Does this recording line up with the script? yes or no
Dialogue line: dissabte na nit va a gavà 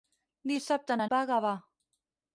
no